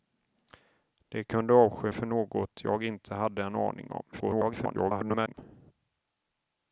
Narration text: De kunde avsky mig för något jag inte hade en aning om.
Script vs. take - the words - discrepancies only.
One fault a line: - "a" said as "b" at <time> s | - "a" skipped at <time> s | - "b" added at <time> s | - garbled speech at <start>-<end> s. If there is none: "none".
- "mig" skipped at 1.9 s
- garbled speech at 4.1-5.3 s